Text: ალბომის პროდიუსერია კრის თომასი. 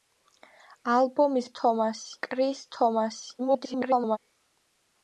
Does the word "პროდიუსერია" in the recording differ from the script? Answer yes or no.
yes